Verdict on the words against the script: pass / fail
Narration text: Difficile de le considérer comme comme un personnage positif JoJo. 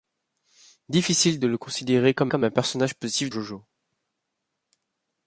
pass